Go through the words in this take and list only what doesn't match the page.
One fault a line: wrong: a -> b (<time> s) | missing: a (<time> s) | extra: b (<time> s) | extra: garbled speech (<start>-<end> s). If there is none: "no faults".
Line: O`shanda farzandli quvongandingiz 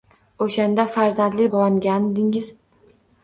no faults